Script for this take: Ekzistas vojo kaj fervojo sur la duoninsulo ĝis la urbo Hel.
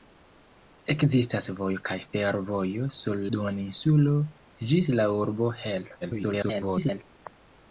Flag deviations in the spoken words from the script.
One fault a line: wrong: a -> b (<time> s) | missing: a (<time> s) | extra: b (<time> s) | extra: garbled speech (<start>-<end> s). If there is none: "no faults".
missing: la (3.2 s)
extra: garbled speech (6.0-7.0 s)